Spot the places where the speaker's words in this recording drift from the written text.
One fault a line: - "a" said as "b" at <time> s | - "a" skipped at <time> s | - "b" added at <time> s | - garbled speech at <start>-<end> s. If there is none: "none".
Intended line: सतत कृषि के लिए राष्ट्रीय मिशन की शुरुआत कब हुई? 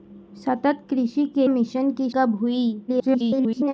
- "लिए राष्ट्रीय" skipped at 1.5 s
- "शुरुआत" skipped at 2.1 s
- garbled speech at 2.9-3.7 s